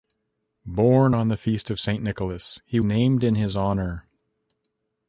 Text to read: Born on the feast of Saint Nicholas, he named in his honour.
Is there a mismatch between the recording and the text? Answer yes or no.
no